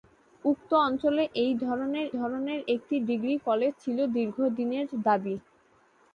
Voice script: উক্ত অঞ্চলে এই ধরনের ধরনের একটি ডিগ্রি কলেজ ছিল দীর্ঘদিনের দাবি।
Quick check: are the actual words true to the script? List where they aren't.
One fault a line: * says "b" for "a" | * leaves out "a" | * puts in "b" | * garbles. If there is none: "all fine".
all fine